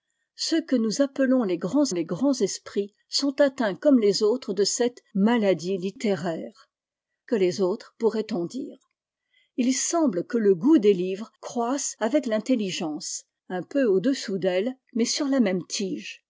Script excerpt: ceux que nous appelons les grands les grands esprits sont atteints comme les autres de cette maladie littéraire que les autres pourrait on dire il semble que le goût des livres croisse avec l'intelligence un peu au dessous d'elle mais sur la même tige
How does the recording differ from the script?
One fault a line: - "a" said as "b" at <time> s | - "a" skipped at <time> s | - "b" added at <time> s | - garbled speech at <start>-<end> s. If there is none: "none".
none